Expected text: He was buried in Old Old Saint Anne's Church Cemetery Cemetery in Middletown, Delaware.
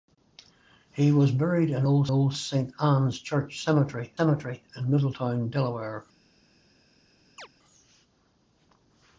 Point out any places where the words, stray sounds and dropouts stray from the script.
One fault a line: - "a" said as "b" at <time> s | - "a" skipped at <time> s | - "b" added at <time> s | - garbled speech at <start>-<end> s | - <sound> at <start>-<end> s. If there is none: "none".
- chirp at 7.4-7.5 s